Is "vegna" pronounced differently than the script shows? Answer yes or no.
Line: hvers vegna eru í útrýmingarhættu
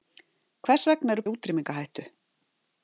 no